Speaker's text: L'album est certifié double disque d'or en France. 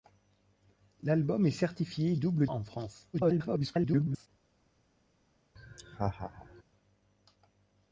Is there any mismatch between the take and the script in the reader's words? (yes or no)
yes